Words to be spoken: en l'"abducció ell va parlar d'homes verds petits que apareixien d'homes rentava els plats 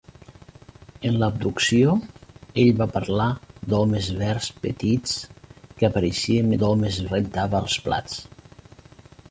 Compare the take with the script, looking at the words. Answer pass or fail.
pass